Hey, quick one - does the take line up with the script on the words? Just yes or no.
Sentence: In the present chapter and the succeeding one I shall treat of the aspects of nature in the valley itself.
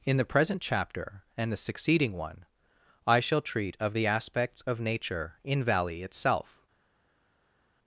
no